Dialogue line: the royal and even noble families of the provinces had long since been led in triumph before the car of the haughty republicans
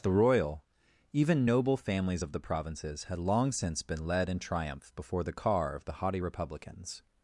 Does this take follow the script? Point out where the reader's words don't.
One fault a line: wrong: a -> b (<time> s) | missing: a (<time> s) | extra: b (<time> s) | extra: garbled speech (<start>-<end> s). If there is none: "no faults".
missing: and (0.6 s)